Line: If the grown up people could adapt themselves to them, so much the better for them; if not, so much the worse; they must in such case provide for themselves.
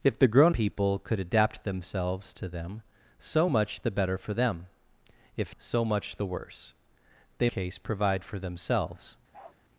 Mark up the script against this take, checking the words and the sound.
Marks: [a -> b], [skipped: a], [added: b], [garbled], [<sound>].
If the grown [skipped: up] people could adapt themselves to them, so much the better for them; if [skipped: not,] so much the worse; they [skipped: must in such] case provide for themselves. [bark]